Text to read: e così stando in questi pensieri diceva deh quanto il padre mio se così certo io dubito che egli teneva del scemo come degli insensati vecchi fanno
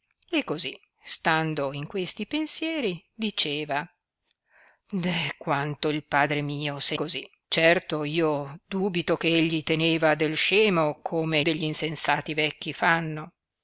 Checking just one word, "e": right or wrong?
right